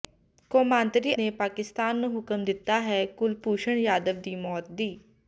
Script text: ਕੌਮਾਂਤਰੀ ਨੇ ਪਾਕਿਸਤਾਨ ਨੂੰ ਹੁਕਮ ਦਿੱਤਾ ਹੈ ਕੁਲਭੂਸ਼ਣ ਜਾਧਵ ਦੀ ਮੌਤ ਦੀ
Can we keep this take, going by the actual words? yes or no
yes